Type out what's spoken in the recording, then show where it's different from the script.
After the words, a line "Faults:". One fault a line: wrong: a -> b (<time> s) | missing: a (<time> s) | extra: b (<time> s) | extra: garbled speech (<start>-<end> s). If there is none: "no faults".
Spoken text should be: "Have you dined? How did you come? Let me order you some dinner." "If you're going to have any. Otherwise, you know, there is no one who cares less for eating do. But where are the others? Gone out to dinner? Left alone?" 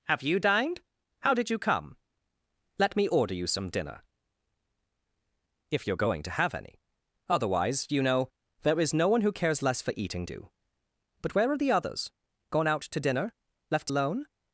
"Have you dined? How did you come? Let me order you some dinner." "If you're going to have any. Otherwise, you know, there is no one who cares less for eating do. But where are the others? Gone out to dinner? Left alone?"
Faults:
no faults